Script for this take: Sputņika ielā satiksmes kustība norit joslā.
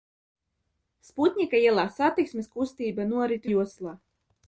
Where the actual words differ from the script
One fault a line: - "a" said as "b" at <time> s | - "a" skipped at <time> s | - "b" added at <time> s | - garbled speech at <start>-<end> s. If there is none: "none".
none